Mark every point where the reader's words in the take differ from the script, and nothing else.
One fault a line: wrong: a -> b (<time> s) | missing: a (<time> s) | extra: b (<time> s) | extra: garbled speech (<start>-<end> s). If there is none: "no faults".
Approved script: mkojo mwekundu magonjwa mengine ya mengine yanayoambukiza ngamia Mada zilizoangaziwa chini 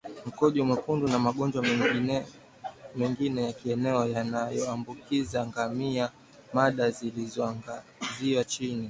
extra: na (1.1 s)
wrong: mengine -> kieneo (3.5 s)